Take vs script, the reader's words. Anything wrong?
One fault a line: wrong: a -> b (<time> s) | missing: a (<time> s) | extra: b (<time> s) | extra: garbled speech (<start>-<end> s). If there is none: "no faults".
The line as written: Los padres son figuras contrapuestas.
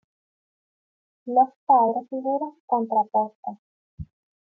missing: son (2.1 s)